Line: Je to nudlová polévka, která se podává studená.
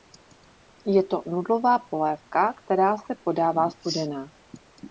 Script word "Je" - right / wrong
right